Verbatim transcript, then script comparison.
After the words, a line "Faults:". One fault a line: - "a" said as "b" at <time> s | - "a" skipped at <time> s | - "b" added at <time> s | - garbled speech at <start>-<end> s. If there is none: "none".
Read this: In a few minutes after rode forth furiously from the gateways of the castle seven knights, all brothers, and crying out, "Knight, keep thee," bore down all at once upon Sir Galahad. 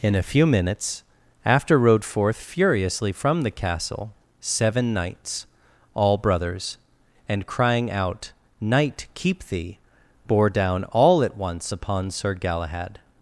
In a few minutes after rode forth furiously from the castle seven knights, all brothers, and crying out, "Knight, keep thee," bore down all at once upon Sir Galahad.
Faults:
- "gateways of the" skipped at 3.5 s